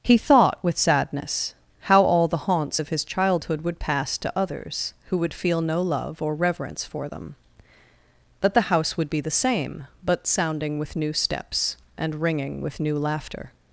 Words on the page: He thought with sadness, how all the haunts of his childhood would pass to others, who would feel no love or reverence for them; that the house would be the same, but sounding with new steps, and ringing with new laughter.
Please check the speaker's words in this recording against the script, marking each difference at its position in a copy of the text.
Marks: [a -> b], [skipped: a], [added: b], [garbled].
He thought with sadness, how all the haunts of his childhood would pass to others, who would feel no love or reverence for them; that the house would be the same, but sounding with new steps, and ringing with new laughter.